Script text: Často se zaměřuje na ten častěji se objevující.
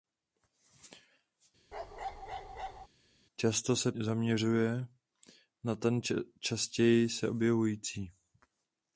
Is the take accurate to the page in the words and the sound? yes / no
no